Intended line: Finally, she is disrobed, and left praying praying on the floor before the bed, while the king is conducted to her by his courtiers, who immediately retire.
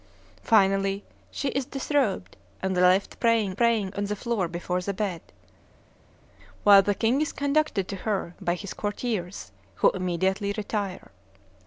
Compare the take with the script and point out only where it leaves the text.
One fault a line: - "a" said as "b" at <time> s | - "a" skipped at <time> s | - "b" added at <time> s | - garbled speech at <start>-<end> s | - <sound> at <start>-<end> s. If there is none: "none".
none